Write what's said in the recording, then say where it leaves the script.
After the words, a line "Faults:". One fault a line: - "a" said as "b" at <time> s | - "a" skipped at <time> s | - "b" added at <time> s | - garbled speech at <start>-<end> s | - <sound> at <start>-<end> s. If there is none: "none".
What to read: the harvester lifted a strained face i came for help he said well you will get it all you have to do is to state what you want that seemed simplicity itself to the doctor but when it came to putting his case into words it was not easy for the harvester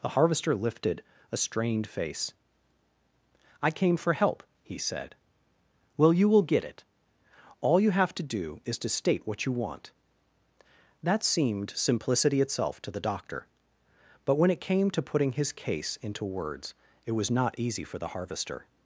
the harvester lifted a strained face i came for help he said well you will get it all you have to do is to state what you want that seemed simplicity itself to the doctor but when it came to putting his case into words it was not easy for the harvester
Faults:
none